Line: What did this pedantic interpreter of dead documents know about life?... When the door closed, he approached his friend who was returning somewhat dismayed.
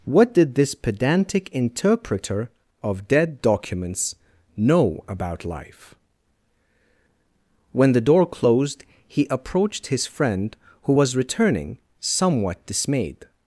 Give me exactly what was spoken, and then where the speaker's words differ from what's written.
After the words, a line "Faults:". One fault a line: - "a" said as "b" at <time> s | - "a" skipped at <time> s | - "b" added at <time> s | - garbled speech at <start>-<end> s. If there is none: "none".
What did this pedantic interpreter of dead documents know about life?... When the door closed, he approached his friend who was returning somewhat dismayed.
Faults:
none